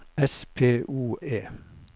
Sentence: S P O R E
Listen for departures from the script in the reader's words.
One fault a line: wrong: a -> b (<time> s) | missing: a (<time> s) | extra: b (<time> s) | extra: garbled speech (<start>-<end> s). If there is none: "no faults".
missing: R (1.2 s)